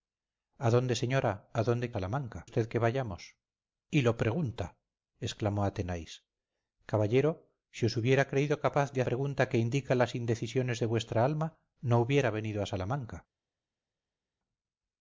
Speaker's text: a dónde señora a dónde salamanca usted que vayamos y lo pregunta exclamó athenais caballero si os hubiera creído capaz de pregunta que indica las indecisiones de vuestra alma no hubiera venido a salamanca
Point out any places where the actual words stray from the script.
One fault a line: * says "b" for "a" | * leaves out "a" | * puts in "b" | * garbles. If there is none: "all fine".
all fine